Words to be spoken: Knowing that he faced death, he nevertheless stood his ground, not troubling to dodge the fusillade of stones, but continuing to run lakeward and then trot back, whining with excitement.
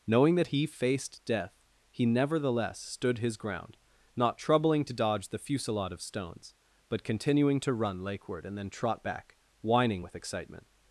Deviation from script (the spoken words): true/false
false